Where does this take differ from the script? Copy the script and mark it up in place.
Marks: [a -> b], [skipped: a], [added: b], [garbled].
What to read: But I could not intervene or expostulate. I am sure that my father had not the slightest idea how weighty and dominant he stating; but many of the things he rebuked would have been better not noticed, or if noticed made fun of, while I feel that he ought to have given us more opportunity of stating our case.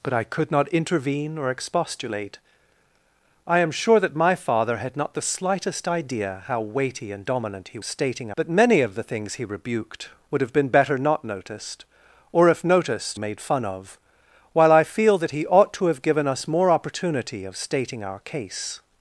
But I could not intervene or expostulate. I am sure that my father had not the slightest idea how weighty and dominant he stating; but many of the things he rebuked would have been better not noticed, or if noticed made fun of, while I feel that he ought to have given us more opportunity of stating our case.